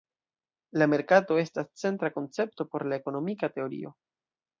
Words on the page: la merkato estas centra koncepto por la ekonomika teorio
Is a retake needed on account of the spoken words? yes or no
no